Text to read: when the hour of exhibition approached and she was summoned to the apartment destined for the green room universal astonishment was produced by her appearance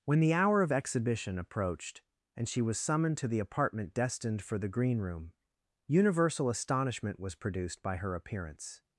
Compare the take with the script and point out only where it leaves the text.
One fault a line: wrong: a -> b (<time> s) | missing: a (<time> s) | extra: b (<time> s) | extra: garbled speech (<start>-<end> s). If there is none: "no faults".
no faults